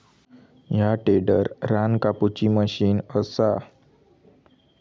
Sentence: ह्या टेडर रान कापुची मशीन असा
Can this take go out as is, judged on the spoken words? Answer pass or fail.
pass